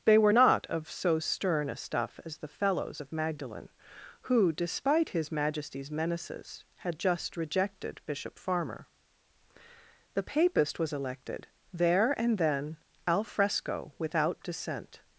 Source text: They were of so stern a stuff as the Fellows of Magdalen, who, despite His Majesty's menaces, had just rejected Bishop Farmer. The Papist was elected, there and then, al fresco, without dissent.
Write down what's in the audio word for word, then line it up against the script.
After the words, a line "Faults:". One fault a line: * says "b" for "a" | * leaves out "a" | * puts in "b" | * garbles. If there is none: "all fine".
They were not of so stern a stuff as the Fellows of Magdalen, who, despite His Majesty's menaces, had just rejected Bishop Farmer. The Papist was elected, there and then, al fresco, without dissent.
Faults:
* puts in "not"